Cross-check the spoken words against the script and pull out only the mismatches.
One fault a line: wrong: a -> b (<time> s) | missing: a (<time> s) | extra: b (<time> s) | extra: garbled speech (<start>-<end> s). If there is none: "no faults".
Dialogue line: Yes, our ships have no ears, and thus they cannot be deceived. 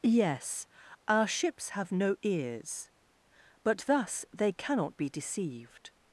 wrong: and -> but (3.6 s)